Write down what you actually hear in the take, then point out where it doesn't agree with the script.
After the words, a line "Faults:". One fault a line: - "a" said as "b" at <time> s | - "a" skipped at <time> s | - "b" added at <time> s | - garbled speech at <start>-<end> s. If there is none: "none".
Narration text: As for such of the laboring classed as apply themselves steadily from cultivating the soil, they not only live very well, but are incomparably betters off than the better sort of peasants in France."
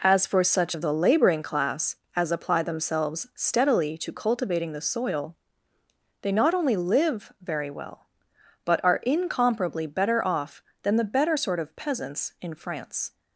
As for such of the laboring class as apply themselves steadily to cultivating the soil, they not only live very well, but are incomparably better off than the better sort of peasants in France."
Faults:
- "classed" said as "class" at 1.4 s
- "from" said as "to" at 4.0 s
- "betters" said as "better" at 9.9 s